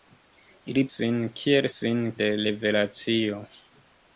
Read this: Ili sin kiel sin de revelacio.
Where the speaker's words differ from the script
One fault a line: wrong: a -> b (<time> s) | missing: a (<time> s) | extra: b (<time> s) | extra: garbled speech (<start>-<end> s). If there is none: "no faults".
no faults